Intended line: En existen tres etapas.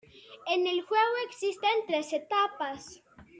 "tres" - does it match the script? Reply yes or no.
yes